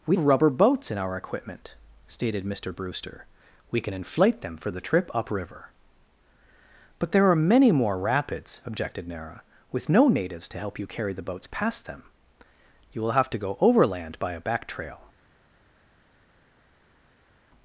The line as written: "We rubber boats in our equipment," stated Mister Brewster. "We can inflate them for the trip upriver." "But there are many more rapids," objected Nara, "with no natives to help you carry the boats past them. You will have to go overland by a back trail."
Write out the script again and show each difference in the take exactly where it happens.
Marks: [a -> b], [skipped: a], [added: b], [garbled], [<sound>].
"We rubber boats in our equipment," stated Mister Brewster. "We can inflate them for the trip upriver." "But there are many more rapids," objected Nara, "with no natives to help you carry the boats past them. You will have to go overland by a back trail."